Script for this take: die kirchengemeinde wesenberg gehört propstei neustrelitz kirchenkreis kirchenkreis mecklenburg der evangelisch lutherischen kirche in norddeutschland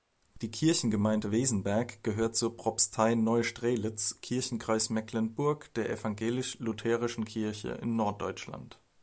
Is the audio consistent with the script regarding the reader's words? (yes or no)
no